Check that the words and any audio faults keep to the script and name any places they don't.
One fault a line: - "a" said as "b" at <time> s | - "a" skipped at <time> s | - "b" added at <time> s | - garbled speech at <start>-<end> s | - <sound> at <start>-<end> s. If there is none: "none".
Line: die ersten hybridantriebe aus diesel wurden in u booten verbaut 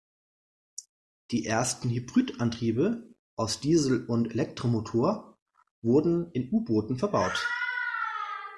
- "und elektromotor" added at 4.1 s